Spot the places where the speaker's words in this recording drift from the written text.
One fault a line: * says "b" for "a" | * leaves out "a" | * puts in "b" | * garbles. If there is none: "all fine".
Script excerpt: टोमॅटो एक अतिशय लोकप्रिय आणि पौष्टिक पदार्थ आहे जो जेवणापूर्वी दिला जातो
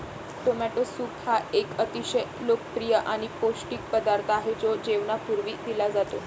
* puts in "सूप हा"